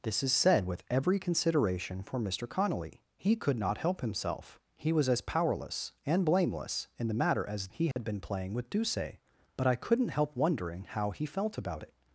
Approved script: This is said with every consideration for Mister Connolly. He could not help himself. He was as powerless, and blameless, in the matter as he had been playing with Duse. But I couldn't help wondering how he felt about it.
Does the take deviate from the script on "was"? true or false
false